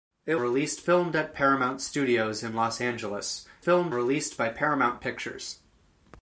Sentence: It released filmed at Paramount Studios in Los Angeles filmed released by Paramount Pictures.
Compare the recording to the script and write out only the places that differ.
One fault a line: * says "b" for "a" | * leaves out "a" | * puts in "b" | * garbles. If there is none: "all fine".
all fine